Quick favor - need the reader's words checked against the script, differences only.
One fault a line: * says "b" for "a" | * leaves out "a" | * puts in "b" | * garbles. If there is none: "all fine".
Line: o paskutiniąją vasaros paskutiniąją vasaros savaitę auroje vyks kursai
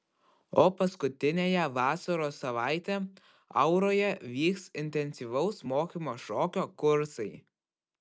* leaves out "paskutiniąją vasaros"
* puts in "intensyvaus mokymo šokio"